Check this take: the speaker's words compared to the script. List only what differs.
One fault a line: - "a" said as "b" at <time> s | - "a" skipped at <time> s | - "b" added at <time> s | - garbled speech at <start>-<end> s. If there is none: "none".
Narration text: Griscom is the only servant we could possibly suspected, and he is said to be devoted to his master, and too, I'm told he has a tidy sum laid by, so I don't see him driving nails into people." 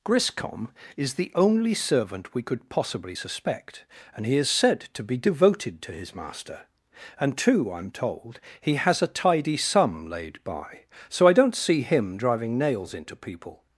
- "suspected" said as "suspect" at 3.1 s